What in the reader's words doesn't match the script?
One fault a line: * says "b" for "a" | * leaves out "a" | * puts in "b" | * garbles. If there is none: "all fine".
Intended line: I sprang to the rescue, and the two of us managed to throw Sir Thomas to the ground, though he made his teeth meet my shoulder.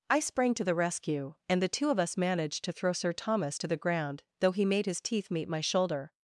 all fine